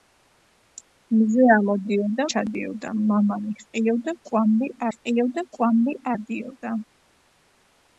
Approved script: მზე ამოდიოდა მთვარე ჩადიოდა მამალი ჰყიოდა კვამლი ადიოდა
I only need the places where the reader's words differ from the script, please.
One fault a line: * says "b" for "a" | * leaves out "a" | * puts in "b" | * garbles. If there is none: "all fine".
* leaves out "მთვარე"
* puts in "ჰყიოდა კვამლი"